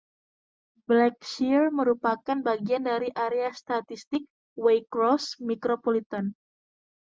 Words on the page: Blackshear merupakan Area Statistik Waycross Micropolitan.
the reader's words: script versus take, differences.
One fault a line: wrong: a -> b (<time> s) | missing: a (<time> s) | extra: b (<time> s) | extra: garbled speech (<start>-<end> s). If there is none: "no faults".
extra: bagian dari (2.4 s)